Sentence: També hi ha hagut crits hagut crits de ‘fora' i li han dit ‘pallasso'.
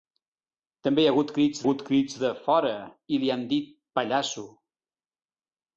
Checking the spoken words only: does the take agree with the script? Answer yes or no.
yes